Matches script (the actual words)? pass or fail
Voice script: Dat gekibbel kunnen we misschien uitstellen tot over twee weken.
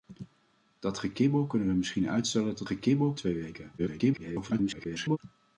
fail